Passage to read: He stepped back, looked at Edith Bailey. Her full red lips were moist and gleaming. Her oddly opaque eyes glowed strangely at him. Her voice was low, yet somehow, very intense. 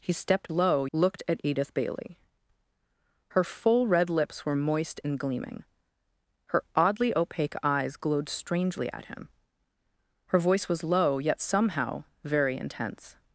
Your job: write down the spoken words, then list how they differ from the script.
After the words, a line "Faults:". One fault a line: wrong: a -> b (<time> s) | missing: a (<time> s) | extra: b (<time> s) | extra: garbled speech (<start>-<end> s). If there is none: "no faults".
He stepped low, looked at Edith Bailey. Her full red lips were moist and gleaming. Her oddly opaque eyes glowed strangely at him. Her voice was low, yet somehow, very intense.
Faults:
wrong: back -> low (0.5 s)